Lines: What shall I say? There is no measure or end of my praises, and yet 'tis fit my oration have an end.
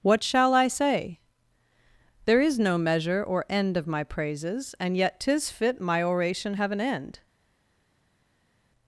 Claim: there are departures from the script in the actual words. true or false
false